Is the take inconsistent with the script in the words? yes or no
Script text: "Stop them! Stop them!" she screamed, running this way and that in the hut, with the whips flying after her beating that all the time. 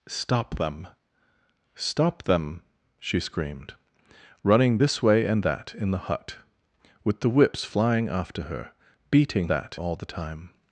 no